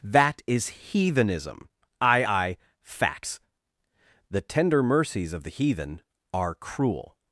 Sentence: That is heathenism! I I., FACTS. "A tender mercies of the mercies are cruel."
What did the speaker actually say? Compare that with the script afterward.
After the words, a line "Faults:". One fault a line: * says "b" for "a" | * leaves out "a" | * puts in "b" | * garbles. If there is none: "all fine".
That is heathenism! I I., FACTS. "The tender mercies of the heathen are cruel."
Faults:
* says "The" for "A"
* says "heathen" for "mercies"